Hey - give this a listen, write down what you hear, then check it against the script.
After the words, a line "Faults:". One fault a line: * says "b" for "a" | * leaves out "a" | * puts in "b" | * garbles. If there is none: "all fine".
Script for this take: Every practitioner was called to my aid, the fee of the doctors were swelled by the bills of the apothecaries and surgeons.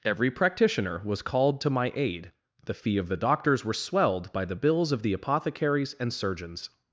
Every practitioner was called to my aid, the fee of the doctors were swelled by the bills of the apothecaries and surgeons.
Faults:
all fine